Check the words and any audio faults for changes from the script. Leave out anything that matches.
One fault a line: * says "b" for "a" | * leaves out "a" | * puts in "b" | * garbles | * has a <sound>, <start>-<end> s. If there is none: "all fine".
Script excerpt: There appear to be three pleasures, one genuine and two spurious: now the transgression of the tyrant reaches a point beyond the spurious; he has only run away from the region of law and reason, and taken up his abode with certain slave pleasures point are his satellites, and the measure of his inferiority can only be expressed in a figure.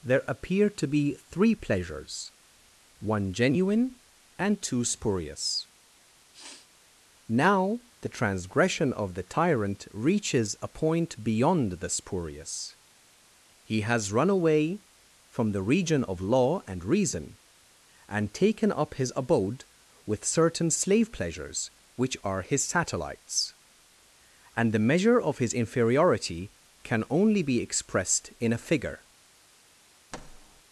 * has a sniff, 6.3-6.7 s
* leaves out "only"
* says "which" for "point"
* has a thud, 30.1-30.6 s